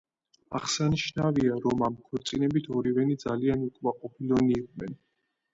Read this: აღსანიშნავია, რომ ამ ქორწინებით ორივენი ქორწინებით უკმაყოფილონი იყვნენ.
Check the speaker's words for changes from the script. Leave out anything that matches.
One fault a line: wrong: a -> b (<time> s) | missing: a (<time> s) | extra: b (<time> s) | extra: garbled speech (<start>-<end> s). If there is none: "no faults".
wrong: ქორწინებით -> ძალიან (3.3 s)